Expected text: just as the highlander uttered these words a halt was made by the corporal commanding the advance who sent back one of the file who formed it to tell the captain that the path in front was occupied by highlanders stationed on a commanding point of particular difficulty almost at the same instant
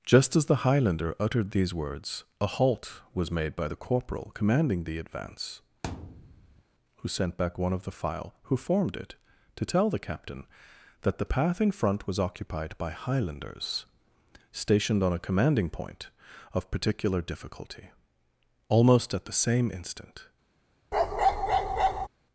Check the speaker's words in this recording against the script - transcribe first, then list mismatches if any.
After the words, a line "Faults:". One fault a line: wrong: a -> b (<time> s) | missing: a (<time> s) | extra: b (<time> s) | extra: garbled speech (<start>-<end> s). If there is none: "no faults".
just as the highlander uttered these words a halt was made by the corporal commanding the advance who sent back one of the file who formed it to tell the captain that the path in front was occupied by highlanders stationed on a commanding point of particular difficulty almost at the same instant
Faults:
no faults